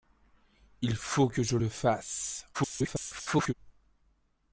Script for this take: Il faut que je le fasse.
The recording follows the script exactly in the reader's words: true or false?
false